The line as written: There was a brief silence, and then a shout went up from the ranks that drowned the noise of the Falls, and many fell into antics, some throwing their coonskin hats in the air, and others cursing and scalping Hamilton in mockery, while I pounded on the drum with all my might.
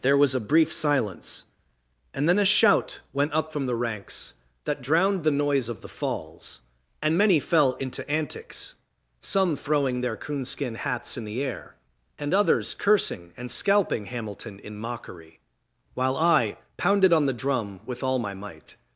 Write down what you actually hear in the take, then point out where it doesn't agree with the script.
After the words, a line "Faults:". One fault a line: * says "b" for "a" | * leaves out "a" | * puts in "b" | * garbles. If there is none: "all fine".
There was a brief silence, and then a shout went up from the ranks that drowned the noise of the Falls, and many fell into antics, some throwing their coonskin hats in the air, and others cursing and scalping Hamilton in mockery, while I pounded on the drum with all my might.
Faults:
all fine